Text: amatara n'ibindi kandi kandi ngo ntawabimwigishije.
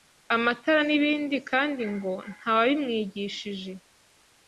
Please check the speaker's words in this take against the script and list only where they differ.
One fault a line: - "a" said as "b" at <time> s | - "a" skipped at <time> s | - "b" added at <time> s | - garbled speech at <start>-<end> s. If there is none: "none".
- "kandi" skipped at 1.8 s